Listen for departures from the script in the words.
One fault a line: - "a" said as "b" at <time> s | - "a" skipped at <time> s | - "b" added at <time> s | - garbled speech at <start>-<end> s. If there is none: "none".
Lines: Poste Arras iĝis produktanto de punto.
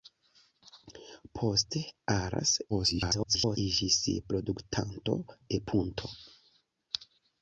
- garbled speech at 2.7-3.6 s